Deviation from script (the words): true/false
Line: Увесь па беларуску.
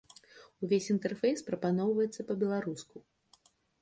true